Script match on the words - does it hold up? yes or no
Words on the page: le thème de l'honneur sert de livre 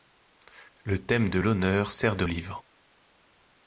yes